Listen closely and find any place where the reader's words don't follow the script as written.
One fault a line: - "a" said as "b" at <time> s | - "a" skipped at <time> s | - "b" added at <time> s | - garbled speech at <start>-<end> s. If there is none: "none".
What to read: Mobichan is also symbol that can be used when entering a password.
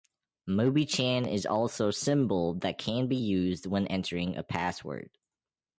none